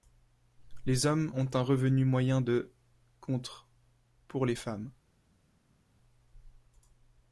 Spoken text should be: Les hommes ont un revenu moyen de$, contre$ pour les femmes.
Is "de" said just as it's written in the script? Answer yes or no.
yes